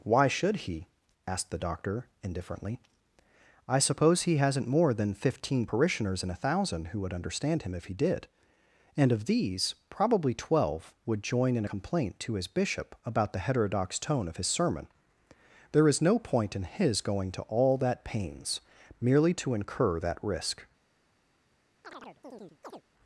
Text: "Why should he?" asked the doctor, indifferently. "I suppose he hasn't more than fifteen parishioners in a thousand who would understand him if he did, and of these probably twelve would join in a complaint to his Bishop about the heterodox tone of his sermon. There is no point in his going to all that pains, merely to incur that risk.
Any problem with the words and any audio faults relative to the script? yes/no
yes